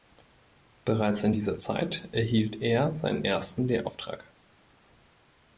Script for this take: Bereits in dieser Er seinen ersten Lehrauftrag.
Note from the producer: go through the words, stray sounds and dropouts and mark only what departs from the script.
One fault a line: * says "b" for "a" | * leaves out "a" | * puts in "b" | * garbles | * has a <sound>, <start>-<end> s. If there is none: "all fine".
* puts in "Zeit erhielt"